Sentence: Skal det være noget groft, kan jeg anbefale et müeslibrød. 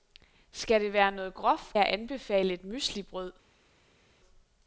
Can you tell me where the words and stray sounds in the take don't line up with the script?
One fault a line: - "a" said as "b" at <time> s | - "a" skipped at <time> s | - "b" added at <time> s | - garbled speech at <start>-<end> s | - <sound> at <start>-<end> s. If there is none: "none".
- "kan" skipped at 1.8 s